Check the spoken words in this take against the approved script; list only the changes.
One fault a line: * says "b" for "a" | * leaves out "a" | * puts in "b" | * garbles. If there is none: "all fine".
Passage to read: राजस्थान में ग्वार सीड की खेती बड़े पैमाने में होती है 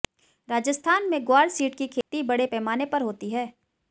* says "पर" for "में"